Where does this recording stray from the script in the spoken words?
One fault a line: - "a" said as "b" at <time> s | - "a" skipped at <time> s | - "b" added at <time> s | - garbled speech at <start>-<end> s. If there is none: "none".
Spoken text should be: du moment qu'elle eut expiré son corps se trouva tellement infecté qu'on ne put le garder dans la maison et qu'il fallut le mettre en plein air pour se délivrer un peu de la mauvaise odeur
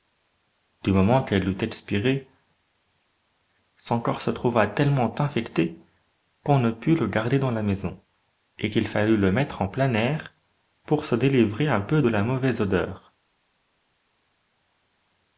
none